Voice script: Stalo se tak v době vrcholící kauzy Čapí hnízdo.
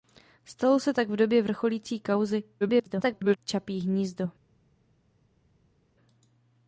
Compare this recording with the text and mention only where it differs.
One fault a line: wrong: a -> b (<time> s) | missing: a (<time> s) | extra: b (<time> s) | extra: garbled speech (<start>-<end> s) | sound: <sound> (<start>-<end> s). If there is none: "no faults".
extra: garbled speech (2.6-3.4 s)